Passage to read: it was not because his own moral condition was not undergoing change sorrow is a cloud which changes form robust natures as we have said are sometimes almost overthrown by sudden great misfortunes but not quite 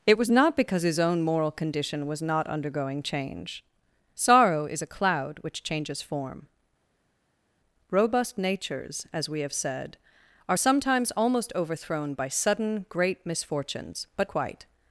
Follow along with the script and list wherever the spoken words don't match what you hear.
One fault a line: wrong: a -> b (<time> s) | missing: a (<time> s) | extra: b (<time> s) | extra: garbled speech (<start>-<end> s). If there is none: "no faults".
missing: not (14.3 s)